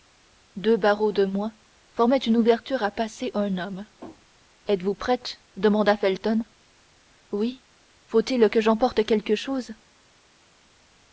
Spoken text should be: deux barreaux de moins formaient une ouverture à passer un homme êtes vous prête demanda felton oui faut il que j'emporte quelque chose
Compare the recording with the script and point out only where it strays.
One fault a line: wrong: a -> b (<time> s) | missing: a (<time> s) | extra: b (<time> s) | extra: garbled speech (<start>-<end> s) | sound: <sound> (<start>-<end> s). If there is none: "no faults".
no faults